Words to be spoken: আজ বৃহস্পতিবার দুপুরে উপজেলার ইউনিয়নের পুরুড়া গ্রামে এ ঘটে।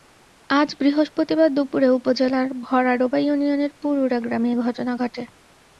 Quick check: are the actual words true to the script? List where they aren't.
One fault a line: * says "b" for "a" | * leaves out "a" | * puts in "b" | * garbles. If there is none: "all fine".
* puts in "ভরাডোবা"
* puts in "ঘটনা"